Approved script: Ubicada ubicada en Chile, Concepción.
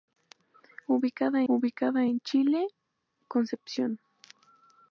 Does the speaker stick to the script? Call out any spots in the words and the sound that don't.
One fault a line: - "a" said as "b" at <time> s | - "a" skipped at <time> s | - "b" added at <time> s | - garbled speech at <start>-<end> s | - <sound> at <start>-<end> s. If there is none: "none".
none